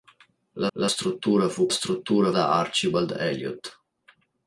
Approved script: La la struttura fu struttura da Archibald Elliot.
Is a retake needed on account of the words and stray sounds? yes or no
no